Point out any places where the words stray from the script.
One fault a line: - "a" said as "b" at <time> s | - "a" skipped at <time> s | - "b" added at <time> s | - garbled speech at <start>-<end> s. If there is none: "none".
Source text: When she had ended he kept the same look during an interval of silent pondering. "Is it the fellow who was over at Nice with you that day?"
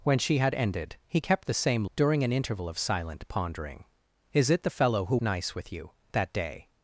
- "look" skipped at 1.8 s
- "was over at" skipped at 5.2 s